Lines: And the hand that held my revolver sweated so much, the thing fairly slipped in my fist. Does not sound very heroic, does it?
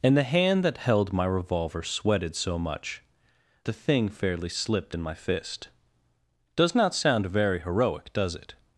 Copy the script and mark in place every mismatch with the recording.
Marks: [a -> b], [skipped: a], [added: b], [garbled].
And the hand that held my revolver sweated so much, the thing fairly slipped in my fist. Does not sound very heroic, does it?